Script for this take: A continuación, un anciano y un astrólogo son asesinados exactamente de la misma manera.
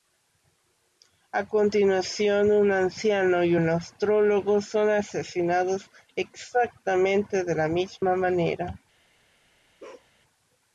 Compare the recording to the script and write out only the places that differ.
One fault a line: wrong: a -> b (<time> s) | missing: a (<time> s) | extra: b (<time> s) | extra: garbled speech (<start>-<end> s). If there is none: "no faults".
no faults